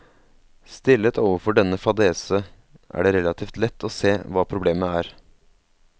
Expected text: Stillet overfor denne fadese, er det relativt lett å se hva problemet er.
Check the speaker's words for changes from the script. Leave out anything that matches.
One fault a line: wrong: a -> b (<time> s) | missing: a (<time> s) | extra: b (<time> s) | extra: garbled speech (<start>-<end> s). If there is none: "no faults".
no faults